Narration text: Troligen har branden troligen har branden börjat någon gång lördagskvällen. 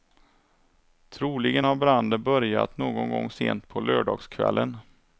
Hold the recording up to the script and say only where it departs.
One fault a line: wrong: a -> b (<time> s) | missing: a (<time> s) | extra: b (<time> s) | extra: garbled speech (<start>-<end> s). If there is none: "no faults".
missing: troligen har branden (2.2 s)
extra: sent på (3.3 s)